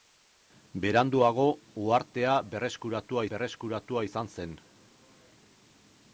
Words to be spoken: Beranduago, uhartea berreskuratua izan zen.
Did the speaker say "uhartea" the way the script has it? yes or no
yes